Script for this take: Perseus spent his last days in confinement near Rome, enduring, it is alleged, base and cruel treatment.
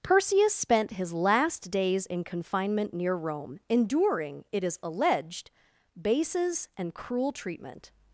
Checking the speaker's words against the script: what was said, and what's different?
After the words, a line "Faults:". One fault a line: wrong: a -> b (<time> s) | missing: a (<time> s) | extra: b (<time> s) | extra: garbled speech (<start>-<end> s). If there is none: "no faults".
Perseus spent his last days in confinement near Rome, enduring, it is alleged, bases and cruel treatment.
Faults:
wrong: base -> bases (6.0 s)